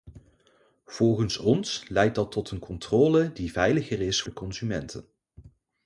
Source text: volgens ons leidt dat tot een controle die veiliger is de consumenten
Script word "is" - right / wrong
right